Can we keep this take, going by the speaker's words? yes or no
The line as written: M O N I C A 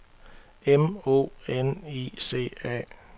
yes